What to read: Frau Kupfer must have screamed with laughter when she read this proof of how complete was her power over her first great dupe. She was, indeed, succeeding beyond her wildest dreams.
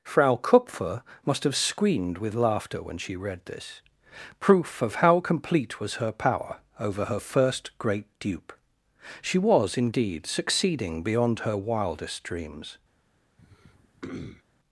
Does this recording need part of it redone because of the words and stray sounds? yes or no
yes